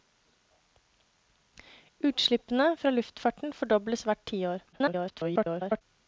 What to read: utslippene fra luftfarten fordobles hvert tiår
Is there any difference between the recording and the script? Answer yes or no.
yes